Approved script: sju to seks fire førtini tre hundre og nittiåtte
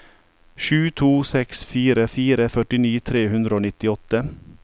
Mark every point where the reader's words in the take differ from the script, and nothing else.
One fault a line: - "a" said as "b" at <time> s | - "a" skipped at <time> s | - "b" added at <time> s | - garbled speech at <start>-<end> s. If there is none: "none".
- "fire" added at 2.1 s